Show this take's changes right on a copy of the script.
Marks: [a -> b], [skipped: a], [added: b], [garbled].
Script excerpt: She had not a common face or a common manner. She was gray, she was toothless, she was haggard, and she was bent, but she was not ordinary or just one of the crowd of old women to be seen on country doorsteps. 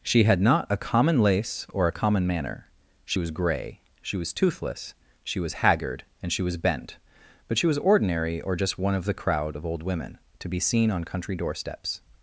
She had not a common [face -> lace] or a common manner. She was gray, she was toothless, she was haggard, and she was bent, but she was [skipped: not] ordinary or just one of the crowd of old women to be seen on country doorsteps.